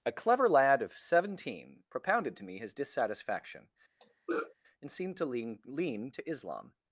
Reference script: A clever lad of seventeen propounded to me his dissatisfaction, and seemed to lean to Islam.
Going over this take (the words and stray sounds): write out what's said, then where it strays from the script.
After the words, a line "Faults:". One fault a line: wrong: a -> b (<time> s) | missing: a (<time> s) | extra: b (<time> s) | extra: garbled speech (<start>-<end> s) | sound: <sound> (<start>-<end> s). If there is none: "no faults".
A clever lad of seventeen propounded to me his dissatisfaction, and seemed to lean lean to Islam.
Faults:
sound: throat clearing (4.0-4.5 s)
extra: lean (5.6 s)